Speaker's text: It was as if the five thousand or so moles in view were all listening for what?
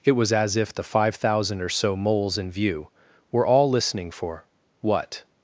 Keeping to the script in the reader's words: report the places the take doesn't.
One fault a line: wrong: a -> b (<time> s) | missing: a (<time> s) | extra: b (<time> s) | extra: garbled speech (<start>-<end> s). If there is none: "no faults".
no faults